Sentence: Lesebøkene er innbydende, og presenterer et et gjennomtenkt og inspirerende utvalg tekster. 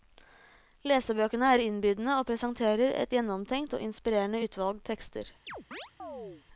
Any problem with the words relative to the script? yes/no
yes